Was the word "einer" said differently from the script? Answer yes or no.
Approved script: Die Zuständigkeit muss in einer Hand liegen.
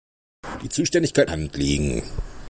yes